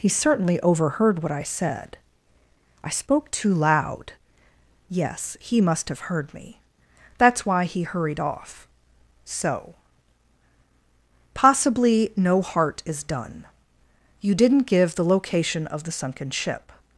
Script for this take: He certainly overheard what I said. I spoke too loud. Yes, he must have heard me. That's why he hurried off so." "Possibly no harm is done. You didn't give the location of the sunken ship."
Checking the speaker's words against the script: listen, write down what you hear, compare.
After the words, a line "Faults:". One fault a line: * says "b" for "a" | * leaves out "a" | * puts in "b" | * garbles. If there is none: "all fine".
He certainly overheard what I said. I spoke too loud. Yes, he must have heard me. That's why he hurried off so." "Possibly no heart is done. You didn't give the location of the sunken ship."
Faults:
* says "heart" for "harm"